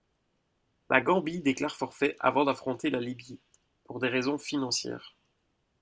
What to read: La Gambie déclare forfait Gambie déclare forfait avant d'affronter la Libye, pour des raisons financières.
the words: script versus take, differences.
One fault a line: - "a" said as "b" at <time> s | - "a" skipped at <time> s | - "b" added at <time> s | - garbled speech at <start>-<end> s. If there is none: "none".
- "Gambie déclare forfait" skipped at 2.2 s